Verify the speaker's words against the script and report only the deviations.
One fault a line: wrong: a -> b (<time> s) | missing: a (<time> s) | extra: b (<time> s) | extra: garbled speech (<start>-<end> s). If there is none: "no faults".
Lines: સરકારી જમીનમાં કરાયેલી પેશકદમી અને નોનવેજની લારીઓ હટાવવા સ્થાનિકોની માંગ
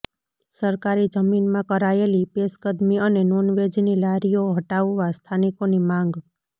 no faults